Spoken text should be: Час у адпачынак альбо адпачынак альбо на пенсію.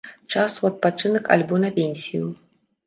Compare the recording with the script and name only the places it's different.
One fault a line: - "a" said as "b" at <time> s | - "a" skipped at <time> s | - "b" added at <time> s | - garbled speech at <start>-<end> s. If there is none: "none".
- "адпачынак альбо" skipped at 1.6 s